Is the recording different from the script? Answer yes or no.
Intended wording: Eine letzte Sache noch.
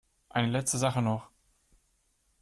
no